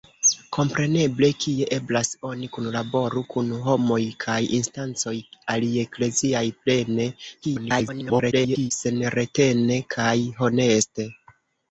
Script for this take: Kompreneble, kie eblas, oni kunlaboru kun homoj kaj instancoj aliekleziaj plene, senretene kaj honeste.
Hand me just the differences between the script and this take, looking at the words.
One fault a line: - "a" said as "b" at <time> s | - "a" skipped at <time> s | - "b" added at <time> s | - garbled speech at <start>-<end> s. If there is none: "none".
- garbled speech at 7.4-8.7 s